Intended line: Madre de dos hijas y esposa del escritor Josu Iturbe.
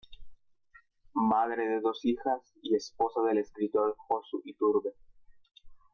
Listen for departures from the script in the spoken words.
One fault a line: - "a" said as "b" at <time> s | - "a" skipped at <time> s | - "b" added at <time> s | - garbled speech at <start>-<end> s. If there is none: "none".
none